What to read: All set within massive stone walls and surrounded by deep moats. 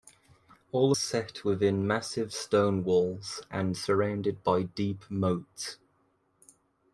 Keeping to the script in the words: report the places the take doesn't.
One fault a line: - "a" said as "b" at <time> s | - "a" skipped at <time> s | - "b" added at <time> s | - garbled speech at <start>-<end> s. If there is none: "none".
none